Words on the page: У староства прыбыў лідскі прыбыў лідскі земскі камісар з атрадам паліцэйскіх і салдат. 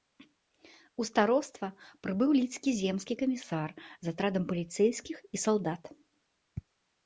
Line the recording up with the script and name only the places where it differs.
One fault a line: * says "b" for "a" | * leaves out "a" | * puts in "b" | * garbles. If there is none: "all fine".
* leaves out "прыбыў лідскі"